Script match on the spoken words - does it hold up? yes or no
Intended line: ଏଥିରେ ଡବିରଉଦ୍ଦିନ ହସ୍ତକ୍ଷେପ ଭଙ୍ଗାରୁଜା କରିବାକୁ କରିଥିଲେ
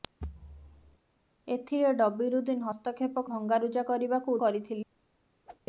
yes